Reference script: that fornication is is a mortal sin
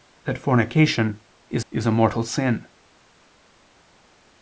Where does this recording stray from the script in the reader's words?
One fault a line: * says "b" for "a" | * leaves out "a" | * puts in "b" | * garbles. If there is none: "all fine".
all fine